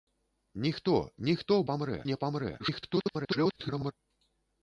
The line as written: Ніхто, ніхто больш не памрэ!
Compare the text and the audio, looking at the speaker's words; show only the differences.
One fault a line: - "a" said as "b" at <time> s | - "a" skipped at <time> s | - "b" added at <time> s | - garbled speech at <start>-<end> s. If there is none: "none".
- "больш" said as "памрэ" at 1.7 s
- garbled speech at 2.6-3.9 s